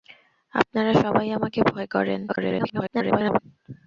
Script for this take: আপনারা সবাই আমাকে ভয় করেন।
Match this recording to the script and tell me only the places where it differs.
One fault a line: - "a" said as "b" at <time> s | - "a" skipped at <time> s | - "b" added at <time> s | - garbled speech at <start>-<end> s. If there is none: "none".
- garbled speech at 2.3-3.4 s